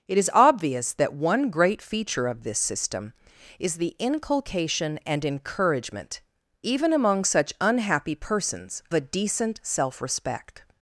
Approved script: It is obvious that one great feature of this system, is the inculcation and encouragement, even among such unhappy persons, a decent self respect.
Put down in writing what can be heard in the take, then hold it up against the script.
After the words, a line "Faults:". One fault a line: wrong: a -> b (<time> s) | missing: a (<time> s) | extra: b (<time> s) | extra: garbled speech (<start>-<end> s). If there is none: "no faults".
It is obvious that one great feature of this system, is the inculcation and encouragement, even among such unhappy persons, a decent self respect.
Faults:
no faults